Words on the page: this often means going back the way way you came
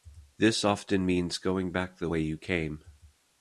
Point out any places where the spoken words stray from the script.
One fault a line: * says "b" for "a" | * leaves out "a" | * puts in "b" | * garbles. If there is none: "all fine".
* leaves out "way"